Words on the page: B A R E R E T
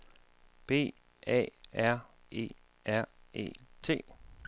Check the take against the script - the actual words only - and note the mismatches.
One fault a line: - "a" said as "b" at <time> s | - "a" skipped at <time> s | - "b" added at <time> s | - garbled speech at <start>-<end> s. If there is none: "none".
none